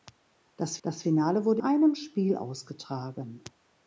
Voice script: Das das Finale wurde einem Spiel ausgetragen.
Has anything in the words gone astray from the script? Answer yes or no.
no